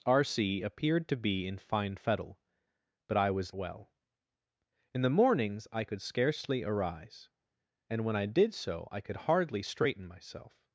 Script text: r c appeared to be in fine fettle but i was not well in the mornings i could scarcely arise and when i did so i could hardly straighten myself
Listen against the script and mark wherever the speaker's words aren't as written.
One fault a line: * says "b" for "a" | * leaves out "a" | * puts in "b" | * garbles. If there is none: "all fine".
* leaves out "not"